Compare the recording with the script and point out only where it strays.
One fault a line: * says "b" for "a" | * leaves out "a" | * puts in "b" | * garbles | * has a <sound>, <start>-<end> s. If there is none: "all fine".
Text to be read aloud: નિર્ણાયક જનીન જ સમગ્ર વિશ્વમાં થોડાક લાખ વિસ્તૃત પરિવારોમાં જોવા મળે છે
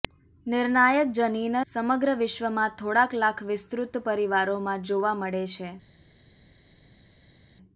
* leaves out "જ"